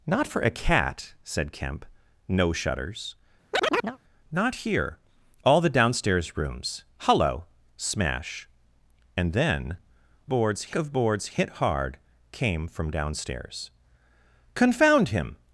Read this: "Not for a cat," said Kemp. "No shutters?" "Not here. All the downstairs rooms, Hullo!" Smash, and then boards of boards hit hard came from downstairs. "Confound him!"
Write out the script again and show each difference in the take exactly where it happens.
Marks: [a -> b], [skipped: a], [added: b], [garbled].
"Not for a cat," said Kemp. "No shutters?" "Not here. All the downstairs rooms, Hullo!" Smash, and then boards of boards hit hard came from downstairs. "Confound him!"